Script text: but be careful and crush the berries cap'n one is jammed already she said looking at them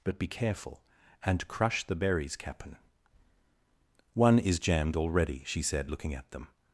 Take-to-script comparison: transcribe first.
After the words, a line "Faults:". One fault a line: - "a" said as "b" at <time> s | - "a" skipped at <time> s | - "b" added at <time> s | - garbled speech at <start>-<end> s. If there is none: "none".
but be careful and crush the berries cap'n one is jammed already she said looking at them
Faults:
none